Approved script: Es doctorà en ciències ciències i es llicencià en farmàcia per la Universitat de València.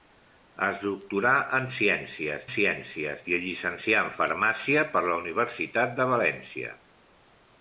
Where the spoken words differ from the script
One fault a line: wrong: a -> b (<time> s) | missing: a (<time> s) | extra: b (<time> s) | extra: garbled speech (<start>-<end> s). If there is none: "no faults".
no faults